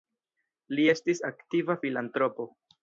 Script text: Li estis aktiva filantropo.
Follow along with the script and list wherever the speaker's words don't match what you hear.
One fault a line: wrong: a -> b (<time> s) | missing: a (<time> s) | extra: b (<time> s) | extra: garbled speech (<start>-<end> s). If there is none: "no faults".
no faults